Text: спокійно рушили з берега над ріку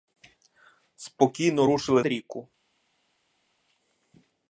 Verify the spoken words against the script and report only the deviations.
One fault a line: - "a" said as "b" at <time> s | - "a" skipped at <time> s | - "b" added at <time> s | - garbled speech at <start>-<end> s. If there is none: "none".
- "з берега над" skipped at 2.0 s